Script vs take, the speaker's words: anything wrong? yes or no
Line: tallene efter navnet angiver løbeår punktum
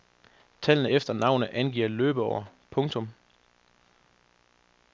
no